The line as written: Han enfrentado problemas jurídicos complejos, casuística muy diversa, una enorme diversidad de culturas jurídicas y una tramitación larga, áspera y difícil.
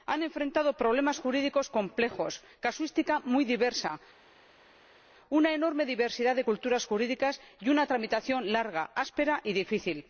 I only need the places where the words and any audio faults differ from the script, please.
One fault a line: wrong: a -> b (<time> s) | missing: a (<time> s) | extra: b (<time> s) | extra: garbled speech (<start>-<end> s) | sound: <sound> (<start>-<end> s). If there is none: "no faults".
no faults